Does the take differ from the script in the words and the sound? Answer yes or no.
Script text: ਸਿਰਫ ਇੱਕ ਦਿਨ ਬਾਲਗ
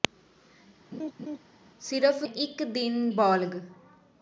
yes